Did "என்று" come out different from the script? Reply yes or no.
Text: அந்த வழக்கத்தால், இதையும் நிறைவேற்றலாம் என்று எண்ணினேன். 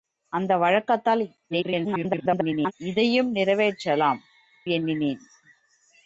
yes